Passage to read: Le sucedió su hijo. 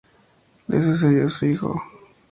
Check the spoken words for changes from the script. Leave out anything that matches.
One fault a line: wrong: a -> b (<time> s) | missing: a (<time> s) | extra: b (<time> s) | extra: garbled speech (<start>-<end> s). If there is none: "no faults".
no faults